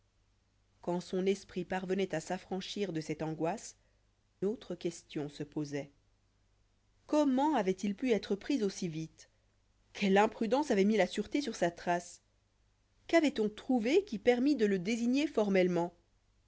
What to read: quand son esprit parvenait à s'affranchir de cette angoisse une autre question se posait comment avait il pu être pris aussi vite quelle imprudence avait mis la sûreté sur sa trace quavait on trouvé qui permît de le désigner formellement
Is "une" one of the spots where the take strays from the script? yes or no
yes